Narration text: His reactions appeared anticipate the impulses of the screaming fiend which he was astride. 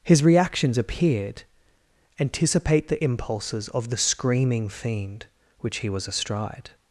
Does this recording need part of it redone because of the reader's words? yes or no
no